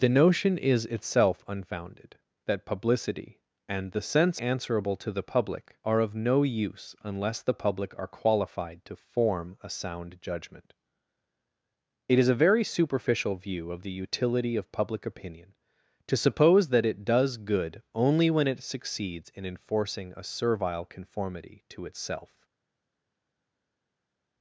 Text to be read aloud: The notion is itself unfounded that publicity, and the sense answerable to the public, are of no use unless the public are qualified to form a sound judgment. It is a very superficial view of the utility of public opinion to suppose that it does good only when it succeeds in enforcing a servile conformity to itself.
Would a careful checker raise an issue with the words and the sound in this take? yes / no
no